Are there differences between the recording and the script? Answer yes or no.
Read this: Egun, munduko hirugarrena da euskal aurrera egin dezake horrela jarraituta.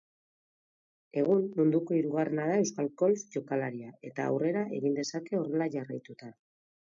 yes